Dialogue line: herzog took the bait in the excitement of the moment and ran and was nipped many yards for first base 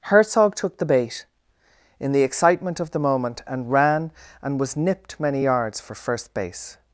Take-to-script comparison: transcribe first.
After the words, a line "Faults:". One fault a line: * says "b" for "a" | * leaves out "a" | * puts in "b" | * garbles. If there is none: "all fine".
herzog took the bait in the excitement of the moment and ran and was nipped many yards for first base
Faults:
all fine